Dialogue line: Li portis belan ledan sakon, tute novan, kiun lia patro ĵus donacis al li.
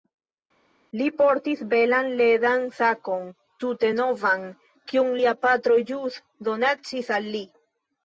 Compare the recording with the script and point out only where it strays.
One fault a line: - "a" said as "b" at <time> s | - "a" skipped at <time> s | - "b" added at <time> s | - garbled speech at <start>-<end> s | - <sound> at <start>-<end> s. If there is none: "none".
none